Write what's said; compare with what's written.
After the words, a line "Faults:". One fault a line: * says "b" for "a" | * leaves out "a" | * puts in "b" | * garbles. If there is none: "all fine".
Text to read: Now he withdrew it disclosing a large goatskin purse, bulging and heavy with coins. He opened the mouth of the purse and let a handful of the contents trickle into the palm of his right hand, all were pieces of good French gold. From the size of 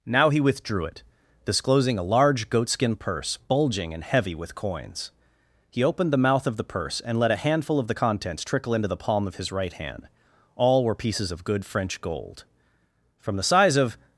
Now he withdrew it disclosing a large goatskin purse, bulging and heavy with coins. He opened the mouth of the purse and let a handful of the contents trickle into the palm of his right hand, all were pieces of good French gold. From the size of
Faults:
all fine